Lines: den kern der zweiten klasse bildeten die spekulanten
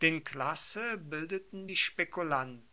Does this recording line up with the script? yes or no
no